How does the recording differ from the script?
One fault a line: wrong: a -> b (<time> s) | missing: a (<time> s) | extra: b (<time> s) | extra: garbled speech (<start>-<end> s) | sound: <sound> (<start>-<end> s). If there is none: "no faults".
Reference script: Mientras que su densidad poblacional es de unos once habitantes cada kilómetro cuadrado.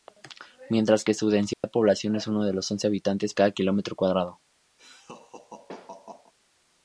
sound: dropout (1.5-1.6 s)
sound: laugh (4.8-6.3 s)